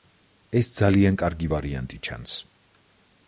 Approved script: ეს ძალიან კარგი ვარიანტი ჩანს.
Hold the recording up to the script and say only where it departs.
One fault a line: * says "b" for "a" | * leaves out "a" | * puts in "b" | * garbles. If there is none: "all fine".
all fine